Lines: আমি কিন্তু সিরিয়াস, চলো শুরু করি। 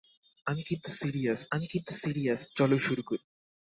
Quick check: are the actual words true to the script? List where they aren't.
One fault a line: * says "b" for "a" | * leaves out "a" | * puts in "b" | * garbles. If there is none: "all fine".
* puts in "আমি কিন্তু সিরিয়াস"